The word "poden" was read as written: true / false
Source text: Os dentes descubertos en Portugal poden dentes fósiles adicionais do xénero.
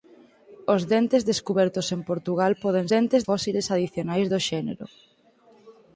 true